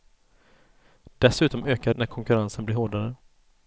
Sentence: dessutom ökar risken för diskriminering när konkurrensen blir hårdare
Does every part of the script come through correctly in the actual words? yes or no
no